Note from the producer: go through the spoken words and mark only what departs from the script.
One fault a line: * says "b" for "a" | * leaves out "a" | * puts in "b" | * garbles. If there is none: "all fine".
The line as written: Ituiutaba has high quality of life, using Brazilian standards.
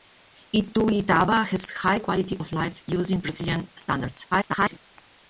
* garbles